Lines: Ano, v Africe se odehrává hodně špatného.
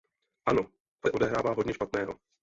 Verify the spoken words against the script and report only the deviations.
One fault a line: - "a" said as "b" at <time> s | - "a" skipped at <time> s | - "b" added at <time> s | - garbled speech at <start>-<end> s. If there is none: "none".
- "Africe" skipped at 1.1 s